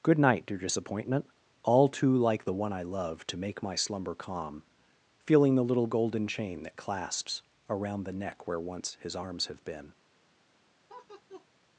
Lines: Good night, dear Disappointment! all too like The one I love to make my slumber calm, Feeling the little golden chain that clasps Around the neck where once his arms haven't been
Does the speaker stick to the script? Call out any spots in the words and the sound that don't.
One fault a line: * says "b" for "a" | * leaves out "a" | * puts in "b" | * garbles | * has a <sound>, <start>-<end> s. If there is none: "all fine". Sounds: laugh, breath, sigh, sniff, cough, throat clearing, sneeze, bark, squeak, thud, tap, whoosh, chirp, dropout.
* says "have" for "haven't"
* has a laugh, 10.9-11.5 s